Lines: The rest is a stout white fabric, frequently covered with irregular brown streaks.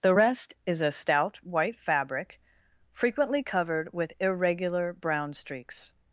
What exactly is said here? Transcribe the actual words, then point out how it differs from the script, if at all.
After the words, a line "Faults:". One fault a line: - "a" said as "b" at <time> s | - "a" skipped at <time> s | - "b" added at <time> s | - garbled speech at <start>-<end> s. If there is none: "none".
The rest is a stout white fabric, frequently covered with irregular brown streaks.
Faults:
none